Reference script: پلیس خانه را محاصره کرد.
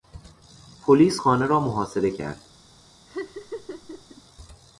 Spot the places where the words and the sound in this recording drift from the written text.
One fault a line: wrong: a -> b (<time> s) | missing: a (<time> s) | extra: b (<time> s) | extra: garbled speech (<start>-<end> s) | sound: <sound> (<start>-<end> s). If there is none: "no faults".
sound: laugh (3.1-4.2 s)